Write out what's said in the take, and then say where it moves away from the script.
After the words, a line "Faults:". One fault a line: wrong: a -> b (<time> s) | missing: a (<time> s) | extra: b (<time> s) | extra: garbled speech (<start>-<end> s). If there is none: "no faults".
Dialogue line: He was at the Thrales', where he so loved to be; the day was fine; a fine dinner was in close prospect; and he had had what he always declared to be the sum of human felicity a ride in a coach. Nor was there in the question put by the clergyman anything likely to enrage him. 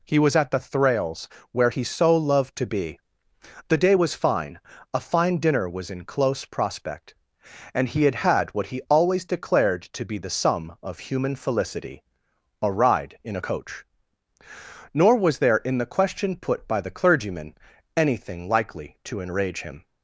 He was at the Thrales', where he so loved to be; the day was fine; a fine dinner was in close prospect; and he had had what he always declared to be the sum of human felicity a ride in a coach. Nor was there in the question put by the clergyman anything likely to enrage him.
Faults:
no faults